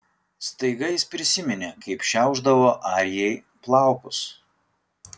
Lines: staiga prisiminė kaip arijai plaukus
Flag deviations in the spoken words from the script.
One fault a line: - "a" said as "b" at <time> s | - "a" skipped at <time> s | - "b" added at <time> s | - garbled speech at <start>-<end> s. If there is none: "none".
- "jis" added at 0.9 s
- "šiaušdavo" added at 2.1 s